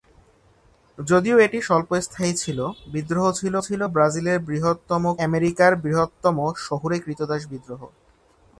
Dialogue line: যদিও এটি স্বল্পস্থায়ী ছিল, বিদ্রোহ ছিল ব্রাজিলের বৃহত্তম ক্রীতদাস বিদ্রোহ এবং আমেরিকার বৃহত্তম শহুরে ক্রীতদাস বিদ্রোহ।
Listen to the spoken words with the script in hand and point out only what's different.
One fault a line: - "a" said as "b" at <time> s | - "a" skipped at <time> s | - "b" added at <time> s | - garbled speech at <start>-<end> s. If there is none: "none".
- "ছিল" added at 3.6 s
- "ক্রীতদাস বিদ্রোহ এবং" skipped at 5.0 s